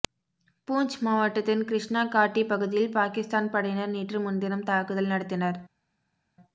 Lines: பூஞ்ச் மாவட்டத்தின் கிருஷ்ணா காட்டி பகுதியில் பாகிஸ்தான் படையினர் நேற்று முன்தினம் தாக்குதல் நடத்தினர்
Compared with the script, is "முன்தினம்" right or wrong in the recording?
right